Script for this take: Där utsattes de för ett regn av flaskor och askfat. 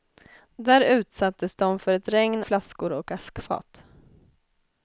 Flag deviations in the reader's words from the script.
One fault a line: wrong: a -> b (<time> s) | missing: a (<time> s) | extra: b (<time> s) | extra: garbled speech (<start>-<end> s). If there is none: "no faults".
missing: av (2.4 s)